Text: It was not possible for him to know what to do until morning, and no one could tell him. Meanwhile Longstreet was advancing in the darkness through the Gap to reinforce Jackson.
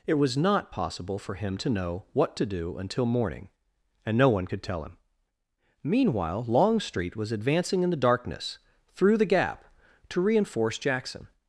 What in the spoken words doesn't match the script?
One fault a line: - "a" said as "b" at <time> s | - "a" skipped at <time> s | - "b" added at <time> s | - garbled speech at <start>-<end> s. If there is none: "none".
none